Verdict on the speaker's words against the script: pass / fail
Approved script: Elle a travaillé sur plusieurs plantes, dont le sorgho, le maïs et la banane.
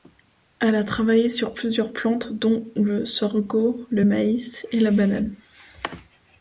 pass